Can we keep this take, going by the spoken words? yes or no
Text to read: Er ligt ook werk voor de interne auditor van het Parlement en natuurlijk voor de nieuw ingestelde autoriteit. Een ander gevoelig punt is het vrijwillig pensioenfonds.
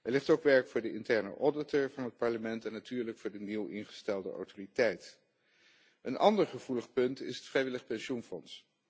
yes